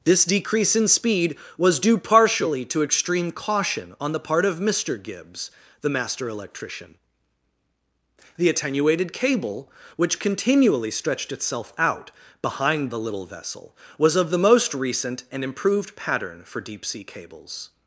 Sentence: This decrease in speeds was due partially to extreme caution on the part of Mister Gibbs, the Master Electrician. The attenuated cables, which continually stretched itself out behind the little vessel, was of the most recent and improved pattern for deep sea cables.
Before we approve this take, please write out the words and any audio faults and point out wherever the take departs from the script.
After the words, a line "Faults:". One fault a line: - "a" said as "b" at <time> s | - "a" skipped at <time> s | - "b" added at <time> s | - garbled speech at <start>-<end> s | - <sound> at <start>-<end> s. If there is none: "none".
This decrease in speed was due partially to extreme caution on the part of Mister Gibbs, the Master Electrician. The attenuated cable, which continually stretched itself out behind the little vessel, was of the most recent and improved pattern for deep sea cables.
Faults:
- "speeds" said as "speed" at 0.9 s
- "cables" said as "cable" at 9.1 s